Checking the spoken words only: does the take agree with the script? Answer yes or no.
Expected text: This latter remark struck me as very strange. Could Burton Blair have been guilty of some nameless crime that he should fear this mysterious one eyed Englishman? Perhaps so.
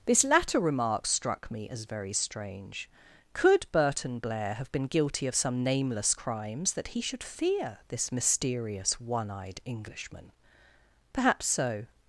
no